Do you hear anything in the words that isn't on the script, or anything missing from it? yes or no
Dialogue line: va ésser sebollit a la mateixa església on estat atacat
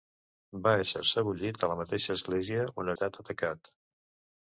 no